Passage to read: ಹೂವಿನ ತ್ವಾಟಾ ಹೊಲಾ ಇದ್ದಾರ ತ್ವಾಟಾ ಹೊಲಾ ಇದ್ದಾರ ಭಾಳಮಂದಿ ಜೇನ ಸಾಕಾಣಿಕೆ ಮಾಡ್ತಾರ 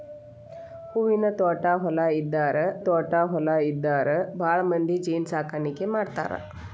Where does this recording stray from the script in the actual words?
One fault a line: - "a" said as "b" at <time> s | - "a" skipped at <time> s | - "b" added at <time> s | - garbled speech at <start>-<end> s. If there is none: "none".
none